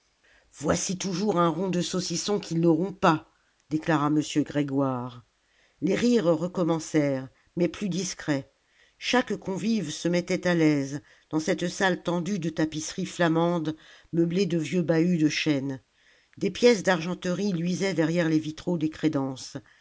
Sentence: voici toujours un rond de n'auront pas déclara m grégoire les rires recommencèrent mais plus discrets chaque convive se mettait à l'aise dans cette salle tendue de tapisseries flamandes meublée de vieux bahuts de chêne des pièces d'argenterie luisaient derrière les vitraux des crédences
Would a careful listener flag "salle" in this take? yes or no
no